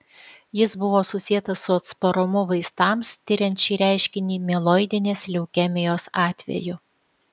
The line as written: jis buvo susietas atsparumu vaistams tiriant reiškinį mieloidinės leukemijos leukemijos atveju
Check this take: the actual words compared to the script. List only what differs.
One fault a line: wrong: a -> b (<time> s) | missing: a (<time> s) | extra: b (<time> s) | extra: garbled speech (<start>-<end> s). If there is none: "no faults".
extra: su (1.6 s)
extra: šį (3.7 s)
missing: leukemijos (6.1 s)